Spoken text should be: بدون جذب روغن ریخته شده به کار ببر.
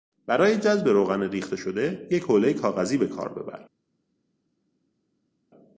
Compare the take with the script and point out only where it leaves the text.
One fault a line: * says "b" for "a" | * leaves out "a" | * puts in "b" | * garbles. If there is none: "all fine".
* says "برای" for "بدون"
* puts in "یک حولهی کاغذی"